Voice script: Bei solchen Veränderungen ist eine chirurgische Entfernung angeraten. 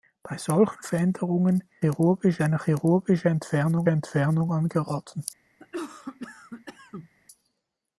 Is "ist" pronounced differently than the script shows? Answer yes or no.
yes